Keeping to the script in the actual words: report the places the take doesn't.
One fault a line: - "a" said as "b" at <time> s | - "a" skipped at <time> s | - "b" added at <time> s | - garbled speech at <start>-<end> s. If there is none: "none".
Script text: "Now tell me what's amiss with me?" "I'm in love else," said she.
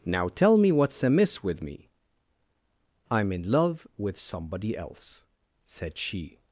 - "with somebody" added at 4.0 s